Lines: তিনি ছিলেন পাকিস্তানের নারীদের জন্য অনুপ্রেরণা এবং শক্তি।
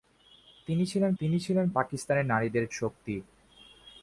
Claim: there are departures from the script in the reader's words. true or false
true